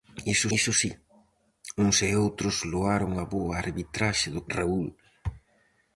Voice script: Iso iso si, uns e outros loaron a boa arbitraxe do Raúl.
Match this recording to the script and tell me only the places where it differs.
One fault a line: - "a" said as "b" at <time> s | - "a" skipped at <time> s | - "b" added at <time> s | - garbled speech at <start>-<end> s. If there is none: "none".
none